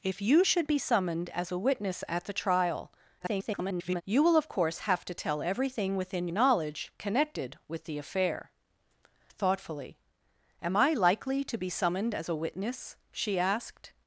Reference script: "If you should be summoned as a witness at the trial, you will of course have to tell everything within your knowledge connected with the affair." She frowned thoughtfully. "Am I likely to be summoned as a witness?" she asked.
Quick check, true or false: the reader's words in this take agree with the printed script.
false